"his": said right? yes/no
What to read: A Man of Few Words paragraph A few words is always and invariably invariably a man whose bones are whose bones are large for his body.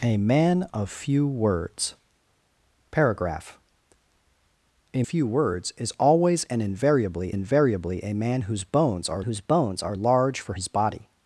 yes